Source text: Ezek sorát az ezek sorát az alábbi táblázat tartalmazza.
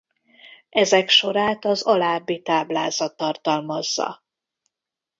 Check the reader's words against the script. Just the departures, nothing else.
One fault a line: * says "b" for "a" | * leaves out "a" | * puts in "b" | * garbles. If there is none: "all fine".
* leaves out "ezek sorát az"